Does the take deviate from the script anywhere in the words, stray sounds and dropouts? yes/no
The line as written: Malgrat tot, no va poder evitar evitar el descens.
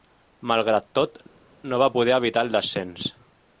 yes